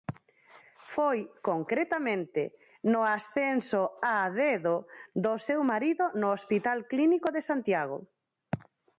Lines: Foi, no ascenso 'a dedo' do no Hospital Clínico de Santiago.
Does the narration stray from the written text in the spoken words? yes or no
yes